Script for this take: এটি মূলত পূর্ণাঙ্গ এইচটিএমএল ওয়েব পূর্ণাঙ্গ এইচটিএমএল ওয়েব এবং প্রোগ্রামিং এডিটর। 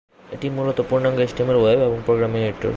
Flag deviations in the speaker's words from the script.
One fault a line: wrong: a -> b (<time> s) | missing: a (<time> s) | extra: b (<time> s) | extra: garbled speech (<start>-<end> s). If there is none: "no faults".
missing: পূর্ণাঙ্গ এইচটিএমএল ওয়েব (1.8 s)